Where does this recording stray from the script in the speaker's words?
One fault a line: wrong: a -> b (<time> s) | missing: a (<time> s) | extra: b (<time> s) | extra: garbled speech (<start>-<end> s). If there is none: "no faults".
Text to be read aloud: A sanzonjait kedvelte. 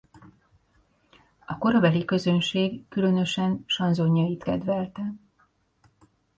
extra: korabeli közönség különösen (1.6 s)